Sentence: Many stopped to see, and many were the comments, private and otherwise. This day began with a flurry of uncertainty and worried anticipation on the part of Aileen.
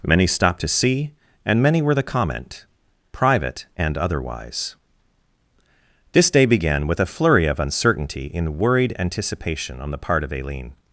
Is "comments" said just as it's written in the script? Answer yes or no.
no